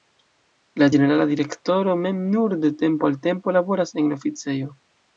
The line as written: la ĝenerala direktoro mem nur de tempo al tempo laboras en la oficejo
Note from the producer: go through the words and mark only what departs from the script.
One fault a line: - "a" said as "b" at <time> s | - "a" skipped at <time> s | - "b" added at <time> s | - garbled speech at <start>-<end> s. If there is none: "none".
none